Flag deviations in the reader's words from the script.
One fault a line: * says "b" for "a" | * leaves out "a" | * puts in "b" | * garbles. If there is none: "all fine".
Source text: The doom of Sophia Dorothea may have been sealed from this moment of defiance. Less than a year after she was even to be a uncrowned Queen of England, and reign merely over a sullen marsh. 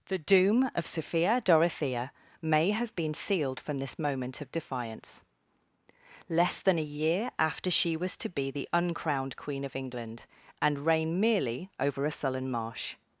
* leaves out "even"
* says "the" for "a"